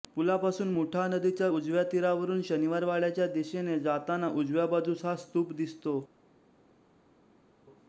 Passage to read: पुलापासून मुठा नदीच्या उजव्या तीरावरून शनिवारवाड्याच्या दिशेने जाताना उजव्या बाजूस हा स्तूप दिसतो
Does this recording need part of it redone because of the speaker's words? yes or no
no